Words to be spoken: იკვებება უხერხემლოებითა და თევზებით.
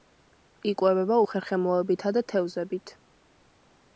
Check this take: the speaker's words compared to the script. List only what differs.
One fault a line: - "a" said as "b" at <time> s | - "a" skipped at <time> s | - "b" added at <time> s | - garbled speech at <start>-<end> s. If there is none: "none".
none